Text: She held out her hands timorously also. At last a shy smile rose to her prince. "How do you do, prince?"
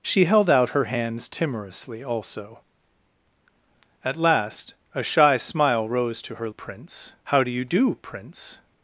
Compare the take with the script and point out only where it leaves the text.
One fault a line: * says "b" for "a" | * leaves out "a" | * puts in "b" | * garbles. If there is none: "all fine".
all fine